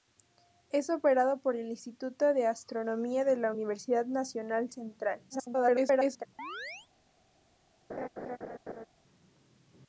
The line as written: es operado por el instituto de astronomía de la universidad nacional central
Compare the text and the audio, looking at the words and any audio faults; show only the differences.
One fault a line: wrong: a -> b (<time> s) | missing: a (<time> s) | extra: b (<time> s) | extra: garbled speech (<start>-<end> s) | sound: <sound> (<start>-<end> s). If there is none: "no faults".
extra: garbled speech (5.3-6.3 s)
sound: chirp (6.4-6.9 s)
sound: laugh (7.9-8.9 s)